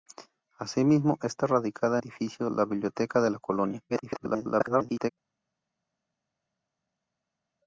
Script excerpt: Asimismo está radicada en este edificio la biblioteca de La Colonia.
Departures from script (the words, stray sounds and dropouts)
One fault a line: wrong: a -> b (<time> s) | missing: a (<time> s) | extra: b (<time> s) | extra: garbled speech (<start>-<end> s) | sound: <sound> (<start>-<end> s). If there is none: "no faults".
missing: en este (2.0 s)
extra: garbled speech (3.9-5.1 s)